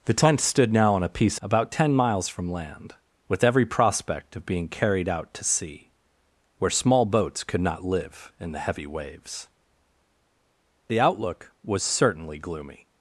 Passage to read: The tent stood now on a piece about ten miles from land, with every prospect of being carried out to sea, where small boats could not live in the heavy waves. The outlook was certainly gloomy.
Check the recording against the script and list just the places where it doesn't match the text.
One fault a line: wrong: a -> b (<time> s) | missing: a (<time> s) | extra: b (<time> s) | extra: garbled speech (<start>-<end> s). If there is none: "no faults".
no faults